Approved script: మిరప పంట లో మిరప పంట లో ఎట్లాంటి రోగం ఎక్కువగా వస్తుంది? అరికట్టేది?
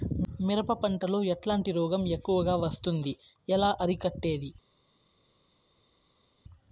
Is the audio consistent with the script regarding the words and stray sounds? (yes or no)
no